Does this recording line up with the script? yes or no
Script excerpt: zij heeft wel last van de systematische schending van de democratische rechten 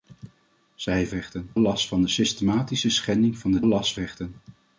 no